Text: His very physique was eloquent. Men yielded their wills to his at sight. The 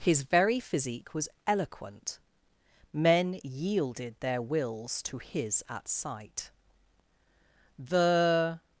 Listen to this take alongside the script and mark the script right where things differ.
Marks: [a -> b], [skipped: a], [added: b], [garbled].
His very physique was eloquent. Men yielded their wills to his at sight. The